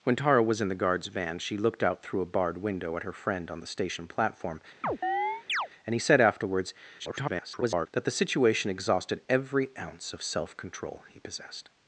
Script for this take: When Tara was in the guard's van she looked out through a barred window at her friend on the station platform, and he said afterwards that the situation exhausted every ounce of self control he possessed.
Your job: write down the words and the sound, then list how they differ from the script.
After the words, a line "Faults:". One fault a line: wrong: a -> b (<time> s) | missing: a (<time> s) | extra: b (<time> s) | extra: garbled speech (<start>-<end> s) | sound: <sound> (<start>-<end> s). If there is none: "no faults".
When Tara was in the guard's van she looked out through a barred window at her friend on the station platform, and he said afterwards [garbled] that the situation exhausted every ounce of self control he possessed.
Faults:
sound: chirp (4.8-5.7 s)
extra: garbled speech (7.0-7.9 s)